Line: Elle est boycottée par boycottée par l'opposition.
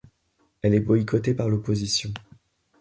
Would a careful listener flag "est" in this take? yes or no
no